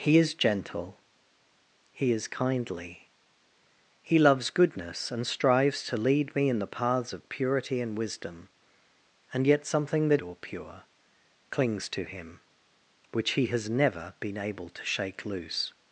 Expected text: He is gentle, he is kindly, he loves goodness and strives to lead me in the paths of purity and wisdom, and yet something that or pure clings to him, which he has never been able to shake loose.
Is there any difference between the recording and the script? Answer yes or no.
no